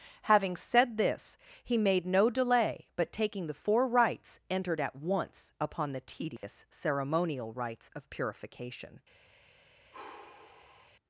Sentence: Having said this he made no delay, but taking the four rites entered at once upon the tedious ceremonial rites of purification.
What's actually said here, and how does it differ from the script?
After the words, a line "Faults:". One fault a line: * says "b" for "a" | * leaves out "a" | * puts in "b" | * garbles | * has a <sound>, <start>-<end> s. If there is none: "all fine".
Having said this he made no delay, but taking the four rites entered at once upon the tedious ceremonial rites of purification.
Faults:
* has a dropout, 6.4-6.4 s
* has a sigh, 9.9-11.0 s